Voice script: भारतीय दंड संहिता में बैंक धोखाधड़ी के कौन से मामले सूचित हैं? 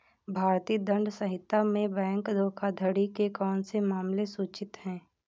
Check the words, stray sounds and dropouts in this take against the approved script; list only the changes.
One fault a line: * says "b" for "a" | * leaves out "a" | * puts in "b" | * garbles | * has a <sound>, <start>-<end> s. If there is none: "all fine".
all fine